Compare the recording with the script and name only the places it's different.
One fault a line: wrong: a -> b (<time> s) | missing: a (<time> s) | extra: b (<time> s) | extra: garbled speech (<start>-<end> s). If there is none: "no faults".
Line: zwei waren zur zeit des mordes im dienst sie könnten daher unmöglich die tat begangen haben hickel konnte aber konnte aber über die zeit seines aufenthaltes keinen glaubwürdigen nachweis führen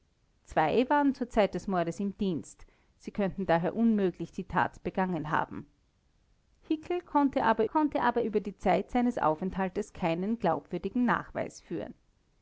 no faults